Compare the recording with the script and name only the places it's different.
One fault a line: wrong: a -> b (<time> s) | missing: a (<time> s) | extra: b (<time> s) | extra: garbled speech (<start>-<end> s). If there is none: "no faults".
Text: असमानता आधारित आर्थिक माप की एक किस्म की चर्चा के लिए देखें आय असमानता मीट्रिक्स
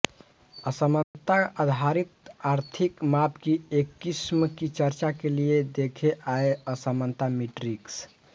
no faults